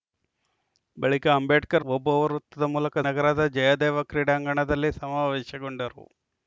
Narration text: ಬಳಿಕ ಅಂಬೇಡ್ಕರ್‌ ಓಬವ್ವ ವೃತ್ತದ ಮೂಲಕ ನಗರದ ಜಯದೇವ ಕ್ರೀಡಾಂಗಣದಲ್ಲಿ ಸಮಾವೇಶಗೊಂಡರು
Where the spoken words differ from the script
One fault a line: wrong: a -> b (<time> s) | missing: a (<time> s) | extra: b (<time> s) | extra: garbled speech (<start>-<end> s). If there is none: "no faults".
no faults